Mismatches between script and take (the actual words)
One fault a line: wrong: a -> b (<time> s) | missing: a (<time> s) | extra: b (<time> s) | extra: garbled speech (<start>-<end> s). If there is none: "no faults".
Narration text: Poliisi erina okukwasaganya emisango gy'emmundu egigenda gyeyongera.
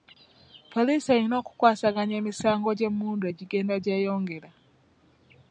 no faults